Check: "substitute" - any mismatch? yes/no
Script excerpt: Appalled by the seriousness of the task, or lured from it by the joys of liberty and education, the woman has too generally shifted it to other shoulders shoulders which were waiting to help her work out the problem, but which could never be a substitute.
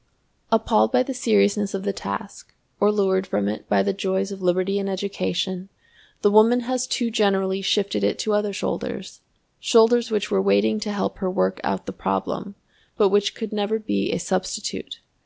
no